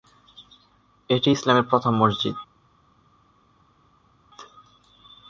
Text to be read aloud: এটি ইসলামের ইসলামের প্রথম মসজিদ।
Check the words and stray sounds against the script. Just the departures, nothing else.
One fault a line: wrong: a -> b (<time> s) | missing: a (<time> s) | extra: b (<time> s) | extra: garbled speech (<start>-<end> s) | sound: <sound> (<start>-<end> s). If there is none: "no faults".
missing: ইসলামের (1.6 s)